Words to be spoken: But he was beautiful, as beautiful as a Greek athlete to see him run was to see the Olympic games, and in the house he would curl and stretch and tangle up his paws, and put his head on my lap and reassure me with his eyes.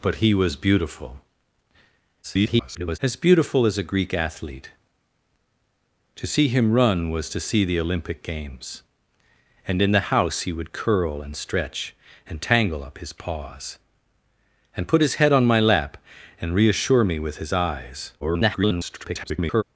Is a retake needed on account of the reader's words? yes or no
yes